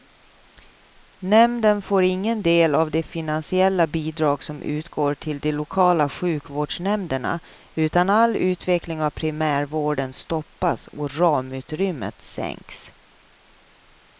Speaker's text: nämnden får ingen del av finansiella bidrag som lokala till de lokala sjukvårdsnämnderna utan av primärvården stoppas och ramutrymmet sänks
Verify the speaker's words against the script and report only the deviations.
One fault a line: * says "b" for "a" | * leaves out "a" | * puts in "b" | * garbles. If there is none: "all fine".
* puts in "de"
* says "utgår" for "lokala"
* puts in "all utveckling"